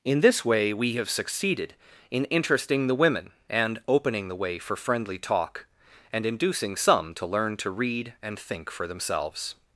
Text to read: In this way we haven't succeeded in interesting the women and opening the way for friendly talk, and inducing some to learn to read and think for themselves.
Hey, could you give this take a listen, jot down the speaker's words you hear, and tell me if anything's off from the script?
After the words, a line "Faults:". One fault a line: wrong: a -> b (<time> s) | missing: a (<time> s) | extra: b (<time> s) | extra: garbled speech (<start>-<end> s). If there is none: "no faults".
In this way we have succeeded in interesting the women and opening the way for friendly talk, and inducing some to learn to read and think for themselves.
Faults:
wrong: haven't -> have (0.9 s)